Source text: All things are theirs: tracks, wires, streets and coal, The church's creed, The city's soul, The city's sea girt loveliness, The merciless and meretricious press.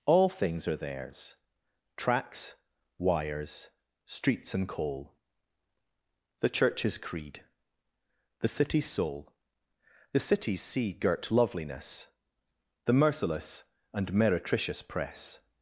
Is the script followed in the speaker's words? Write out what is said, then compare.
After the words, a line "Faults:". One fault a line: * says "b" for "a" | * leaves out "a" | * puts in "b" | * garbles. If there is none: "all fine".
All things are theirs: tracks, wires, streets and coal, The church's creed, The city's soul, The city's sea girt loveliness, The merciless and meretricious press.
Faults:
all fine